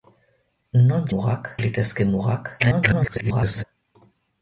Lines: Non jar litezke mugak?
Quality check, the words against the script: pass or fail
fail